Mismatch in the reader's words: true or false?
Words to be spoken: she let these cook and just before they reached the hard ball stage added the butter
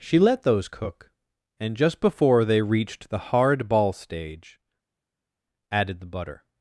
true